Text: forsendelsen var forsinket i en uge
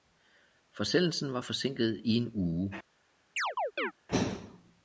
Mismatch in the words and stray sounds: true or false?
true